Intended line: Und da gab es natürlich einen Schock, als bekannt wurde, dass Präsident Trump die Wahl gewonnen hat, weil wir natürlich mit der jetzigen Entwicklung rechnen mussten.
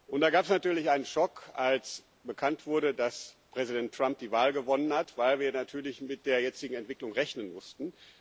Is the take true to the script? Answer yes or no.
yes